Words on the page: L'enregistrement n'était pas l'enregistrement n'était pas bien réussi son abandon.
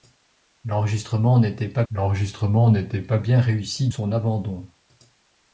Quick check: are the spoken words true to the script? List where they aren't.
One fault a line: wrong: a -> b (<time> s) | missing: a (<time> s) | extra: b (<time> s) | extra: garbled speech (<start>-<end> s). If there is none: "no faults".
no faults